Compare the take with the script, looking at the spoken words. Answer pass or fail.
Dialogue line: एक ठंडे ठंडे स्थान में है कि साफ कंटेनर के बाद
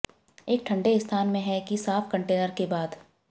fail